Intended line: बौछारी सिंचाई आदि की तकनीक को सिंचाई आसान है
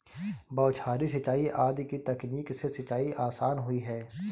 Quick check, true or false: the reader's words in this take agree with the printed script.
false